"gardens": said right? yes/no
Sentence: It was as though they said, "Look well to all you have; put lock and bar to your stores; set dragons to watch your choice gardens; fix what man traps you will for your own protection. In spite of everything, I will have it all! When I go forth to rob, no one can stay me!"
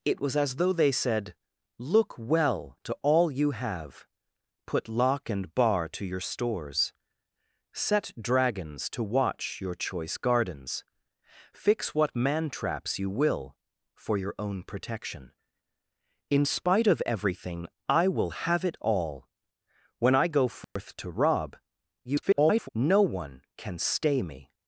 yes